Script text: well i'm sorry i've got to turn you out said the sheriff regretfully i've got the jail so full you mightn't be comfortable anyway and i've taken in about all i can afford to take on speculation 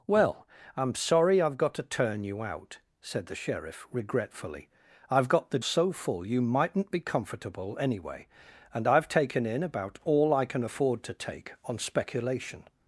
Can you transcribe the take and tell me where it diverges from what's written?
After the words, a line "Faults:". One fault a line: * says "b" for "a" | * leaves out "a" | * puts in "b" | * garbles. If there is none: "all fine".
well i'm sorry i've got to turn you out said the sheriff regretfully i've got the so full you mightn't be comfortable anyway and i've taken in about all i can afford to take on speculation
Faults:
* leaves out "jail"